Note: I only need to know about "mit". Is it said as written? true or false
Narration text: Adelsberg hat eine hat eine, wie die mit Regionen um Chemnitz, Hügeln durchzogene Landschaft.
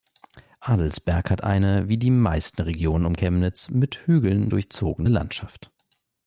false